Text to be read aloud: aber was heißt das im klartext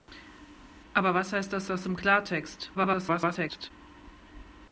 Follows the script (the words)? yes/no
no